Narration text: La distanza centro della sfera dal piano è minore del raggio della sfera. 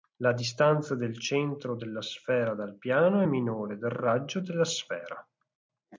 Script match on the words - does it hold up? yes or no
no